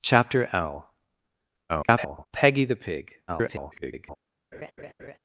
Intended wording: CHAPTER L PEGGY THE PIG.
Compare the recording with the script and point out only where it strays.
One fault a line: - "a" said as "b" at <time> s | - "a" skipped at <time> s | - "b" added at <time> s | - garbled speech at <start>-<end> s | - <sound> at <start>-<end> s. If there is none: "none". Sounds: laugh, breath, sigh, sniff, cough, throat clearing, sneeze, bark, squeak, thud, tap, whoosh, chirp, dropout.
- garbled speech at 1.7-2.3 s
- garbled speech at 3.3-4.2 s
- laugh at 4.5-5.2 s